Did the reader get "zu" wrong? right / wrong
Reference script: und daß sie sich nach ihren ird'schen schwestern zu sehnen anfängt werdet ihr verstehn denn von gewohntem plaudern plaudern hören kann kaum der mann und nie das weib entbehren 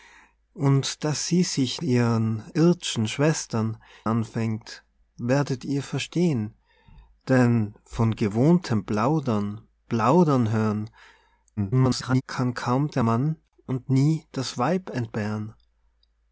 wrong